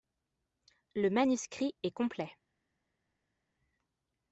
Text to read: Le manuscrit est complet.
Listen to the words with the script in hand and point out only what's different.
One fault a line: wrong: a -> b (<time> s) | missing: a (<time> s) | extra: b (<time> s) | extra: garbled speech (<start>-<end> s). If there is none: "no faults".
no faults